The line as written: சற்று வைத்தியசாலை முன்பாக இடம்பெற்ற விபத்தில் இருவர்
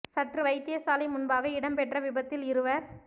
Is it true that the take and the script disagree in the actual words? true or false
false